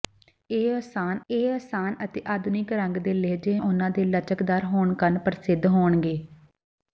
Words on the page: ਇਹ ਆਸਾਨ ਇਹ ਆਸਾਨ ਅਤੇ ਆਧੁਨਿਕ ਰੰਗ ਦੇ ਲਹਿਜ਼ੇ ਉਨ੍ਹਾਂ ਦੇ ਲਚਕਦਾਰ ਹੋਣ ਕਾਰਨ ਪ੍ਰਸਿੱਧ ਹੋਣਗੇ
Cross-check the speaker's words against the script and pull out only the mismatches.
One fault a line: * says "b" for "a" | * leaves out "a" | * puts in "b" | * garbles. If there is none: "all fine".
all fine